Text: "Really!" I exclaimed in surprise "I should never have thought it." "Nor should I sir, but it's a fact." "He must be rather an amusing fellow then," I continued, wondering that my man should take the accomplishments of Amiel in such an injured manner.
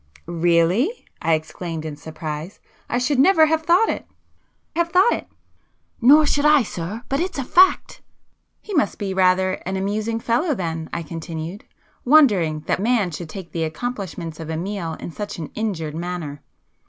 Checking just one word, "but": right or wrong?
right